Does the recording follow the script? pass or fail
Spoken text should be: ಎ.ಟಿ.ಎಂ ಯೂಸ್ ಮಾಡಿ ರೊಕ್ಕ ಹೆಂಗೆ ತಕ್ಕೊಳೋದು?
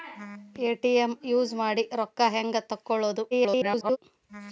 fail